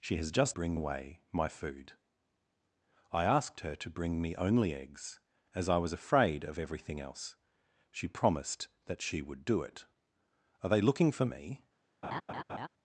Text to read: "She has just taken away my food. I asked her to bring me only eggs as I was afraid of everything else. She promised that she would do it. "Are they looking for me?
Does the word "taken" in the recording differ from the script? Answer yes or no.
yes